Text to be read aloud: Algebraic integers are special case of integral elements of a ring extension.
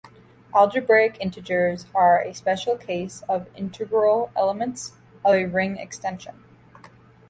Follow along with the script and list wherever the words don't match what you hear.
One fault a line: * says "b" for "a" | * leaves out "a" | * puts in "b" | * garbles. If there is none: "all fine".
* puts in "a"